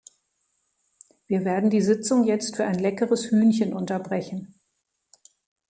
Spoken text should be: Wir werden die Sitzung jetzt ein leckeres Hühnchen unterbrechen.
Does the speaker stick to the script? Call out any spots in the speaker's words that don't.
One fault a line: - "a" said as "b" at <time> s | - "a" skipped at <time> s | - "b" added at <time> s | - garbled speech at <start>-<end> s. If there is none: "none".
- "für" added at 2.5 s